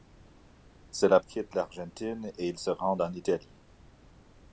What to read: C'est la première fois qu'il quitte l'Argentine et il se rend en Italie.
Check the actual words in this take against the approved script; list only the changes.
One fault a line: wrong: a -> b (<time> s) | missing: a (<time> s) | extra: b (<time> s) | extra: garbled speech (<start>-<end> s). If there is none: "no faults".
missing: première fois qu'il (1.2 s)